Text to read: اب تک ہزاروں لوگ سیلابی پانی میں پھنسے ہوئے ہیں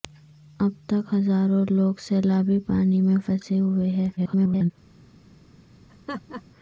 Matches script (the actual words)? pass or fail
fail